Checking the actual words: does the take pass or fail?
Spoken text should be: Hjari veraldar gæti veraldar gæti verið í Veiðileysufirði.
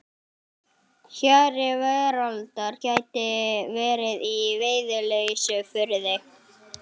fail